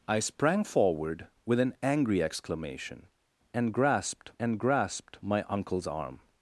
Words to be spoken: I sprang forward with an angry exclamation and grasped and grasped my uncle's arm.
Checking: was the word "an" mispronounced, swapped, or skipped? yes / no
no